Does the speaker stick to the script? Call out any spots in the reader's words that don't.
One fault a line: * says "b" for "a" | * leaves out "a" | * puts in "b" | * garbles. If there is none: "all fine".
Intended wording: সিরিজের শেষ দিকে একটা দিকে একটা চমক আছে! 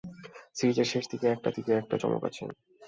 all fine